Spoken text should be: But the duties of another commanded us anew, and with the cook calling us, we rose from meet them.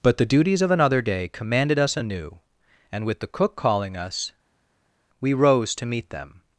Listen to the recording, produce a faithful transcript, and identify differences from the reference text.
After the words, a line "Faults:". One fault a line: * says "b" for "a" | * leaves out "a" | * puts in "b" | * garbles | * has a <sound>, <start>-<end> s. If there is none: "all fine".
But the duties of another day commanded us anew, and with the cook calling us, we rose to meet them.
Faults:
* puts in "day"
* says "to" for "from"